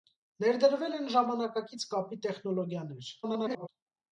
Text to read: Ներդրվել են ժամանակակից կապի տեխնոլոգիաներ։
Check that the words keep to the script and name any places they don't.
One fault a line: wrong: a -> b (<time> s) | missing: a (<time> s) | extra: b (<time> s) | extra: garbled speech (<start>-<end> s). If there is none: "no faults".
extra: garbled speech (3.2-3.7 s)